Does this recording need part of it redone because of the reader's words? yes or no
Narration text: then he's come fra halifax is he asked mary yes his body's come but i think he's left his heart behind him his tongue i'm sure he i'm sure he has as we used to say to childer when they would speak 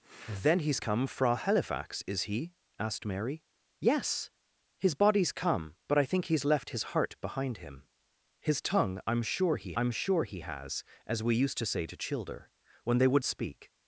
no